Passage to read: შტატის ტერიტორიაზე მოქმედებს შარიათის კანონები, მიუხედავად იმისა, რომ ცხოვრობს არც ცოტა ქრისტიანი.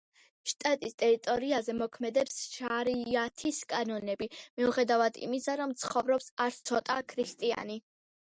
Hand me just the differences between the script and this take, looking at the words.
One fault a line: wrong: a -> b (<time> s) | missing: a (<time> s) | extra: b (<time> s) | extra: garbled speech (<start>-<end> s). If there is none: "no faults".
no faults